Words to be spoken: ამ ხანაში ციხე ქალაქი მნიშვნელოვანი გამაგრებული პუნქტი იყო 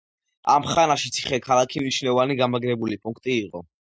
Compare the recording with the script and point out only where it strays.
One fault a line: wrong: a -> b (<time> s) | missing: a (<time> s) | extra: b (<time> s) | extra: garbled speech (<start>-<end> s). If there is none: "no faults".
no faults